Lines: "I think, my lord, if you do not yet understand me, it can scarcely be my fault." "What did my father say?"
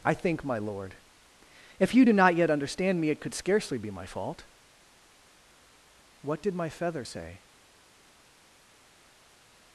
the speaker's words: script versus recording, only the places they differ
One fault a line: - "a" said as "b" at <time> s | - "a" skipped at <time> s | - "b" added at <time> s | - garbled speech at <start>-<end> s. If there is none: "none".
- "can" said as "could" at 3.2 s
- "father" said as "feather" at 6.7 s